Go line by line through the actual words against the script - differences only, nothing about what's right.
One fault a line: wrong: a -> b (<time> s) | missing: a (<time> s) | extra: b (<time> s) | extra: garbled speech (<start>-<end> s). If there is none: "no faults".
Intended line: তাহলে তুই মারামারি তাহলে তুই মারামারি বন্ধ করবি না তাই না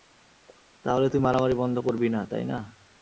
missing: তাহলে তুই মারামারি (1.5 s)